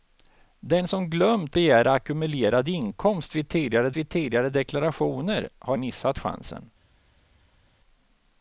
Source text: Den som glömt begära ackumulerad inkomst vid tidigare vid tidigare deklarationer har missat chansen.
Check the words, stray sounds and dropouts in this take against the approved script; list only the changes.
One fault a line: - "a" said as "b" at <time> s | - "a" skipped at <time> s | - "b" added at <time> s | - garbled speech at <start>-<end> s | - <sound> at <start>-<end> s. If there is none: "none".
none